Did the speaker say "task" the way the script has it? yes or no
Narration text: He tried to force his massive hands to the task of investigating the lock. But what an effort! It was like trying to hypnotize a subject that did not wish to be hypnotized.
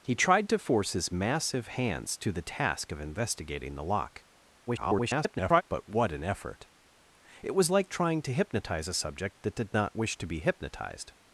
yes